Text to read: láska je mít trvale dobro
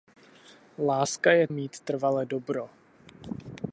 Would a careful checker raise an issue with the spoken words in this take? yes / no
no